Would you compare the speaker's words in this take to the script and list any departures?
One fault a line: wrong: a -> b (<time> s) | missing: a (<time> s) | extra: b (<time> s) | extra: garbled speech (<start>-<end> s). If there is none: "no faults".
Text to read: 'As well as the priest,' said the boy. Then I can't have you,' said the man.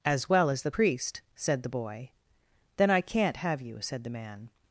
no faults